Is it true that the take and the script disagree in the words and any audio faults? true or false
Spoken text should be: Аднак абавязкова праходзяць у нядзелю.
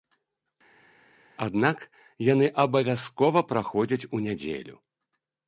true